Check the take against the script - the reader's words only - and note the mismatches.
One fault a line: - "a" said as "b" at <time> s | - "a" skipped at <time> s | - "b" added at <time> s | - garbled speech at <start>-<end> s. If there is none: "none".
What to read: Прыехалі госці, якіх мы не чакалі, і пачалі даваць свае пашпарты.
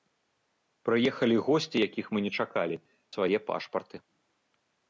- "і пачалі даваць" skipped at 2.8 s